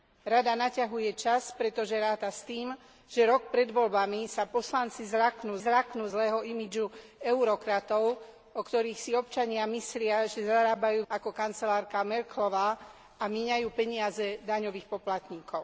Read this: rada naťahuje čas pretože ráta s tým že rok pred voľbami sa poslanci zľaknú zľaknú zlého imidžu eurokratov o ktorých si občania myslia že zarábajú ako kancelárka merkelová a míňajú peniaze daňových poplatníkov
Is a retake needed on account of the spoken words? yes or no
no